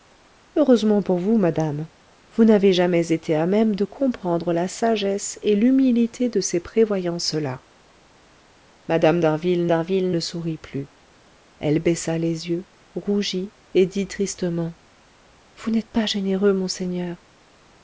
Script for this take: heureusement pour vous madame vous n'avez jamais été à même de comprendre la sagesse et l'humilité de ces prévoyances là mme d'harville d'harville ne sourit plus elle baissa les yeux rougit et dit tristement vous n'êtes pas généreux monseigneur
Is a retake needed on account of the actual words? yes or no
no